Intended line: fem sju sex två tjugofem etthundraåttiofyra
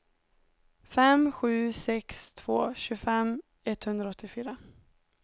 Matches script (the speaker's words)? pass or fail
pass